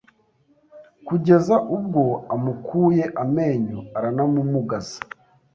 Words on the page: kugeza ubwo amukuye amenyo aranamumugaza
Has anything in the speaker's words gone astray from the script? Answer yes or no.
no